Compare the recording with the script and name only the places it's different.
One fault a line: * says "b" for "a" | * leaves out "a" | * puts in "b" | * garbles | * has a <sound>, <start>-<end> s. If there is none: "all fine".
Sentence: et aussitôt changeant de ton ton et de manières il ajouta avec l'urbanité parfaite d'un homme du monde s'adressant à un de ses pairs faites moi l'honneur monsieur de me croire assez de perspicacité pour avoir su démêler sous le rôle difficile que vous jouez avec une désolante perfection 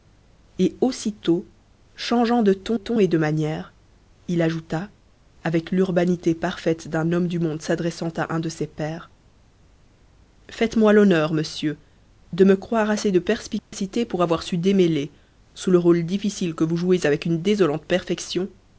* has a dropout, 13.6-13.7 s